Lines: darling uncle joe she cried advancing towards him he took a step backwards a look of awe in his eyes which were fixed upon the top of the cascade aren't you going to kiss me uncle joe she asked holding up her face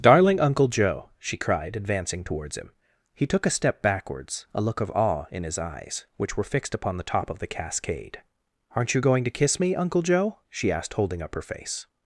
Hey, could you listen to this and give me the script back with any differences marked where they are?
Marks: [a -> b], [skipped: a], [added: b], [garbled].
darling uncle joe she cried advancing towards him he took a step backwards a look of awe in his eyes which were fixed upon the top of the cascade aren't you going to kiss me uncle joe she asked holding up her face